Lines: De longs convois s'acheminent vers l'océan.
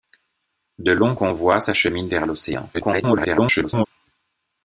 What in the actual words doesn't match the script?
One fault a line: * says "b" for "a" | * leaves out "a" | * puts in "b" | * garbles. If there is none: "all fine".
* garbles